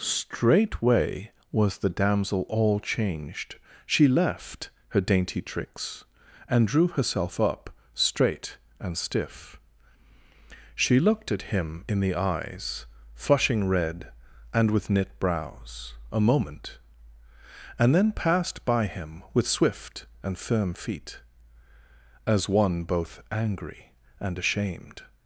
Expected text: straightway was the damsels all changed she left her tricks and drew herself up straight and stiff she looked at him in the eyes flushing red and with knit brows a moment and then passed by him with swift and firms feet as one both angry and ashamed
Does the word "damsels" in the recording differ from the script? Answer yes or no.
yes